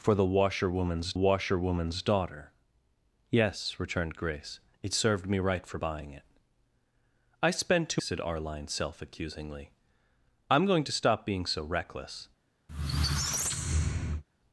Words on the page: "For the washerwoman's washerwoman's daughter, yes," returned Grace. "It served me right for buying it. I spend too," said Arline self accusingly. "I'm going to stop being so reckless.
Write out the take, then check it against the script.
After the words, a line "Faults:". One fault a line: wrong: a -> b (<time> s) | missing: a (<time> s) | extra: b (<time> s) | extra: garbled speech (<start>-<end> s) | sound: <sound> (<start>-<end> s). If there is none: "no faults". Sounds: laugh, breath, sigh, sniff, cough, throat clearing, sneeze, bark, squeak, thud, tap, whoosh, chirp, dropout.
"For the washerwoman's washerwoman's daughter, yes," returned Grace. "It served me right for buying it. I spend too," said Arline self accusingly. "I'm going to stop being so reckless.
Faults:
sound: squeak (12.7-14.2 s)